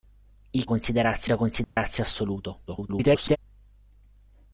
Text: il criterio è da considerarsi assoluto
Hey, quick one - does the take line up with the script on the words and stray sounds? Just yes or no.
no